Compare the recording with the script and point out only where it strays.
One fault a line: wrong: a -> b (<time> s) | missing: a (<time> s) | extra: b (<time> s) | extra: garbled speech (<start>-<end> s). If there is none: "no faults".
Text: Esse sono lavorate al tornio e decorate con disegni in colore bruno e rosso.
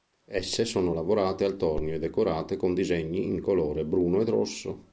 no faults